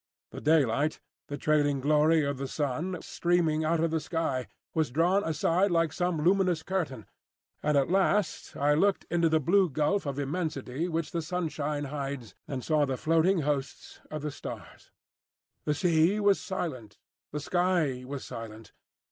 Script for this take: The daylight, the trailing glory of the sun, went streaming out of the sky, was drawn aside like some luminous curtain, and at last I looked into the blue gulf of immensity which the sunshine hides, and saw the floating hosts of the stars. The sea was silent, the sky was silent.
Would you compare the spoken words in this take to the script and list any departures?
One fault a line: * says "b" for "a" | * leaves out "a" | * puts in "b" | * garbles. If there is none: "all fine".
* leaves out "went"